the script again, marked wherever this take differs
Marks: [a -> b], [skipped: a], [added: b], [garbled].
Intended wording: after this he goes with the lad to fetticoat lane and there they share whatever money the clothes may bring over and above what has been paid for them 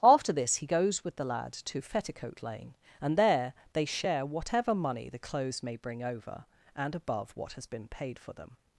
after this he goes with the lad to fetticoat lane and there they share whatever money the clothes may bring over and above what has been paid for them